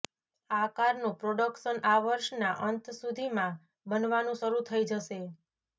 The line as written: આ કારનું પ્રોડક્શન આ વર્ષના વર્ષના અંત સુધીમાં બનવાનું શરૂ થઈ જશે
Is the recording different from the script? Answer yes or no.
yes